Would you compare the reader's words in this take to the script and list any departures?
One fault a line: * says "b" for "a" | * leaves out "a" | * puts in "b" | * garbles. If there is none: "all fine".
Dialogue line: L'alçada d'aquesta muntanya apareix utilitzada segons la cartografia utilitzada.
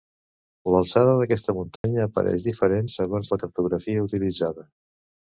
* says "diferent" for "utilitzada"